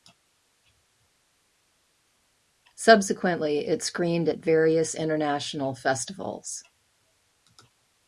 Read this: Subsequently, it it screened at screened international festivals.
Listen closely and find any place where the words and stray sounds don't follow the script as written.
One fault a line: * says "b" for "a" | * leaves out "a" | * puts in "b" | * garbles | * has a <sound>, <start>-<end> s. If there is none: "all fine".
* leaves out "it"
* says "various" for "screened"